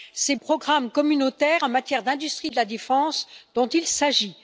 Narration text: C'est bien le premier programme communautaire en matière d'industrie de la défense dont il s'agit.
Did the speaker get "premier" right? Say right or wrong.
wrong